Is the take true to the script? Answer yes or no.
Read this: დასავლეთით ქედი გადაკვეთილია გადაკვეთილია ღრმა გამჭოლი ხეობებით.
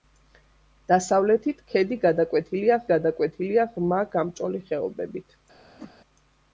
yes